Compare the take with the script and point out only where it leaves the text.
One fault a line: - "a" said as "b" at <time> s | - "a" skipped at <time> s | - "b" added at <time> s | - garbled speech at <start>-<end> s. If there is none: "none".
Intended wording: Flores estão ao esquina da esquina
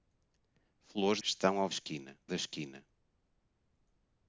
none